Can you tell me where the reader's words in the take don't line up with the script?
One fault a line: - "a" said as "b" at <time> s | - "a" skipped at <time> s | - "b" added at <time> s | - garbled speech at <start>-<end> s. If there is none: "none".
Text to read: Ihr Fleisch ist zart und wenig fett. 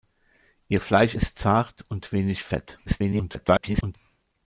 - garbled speech at 2.9-4.0 s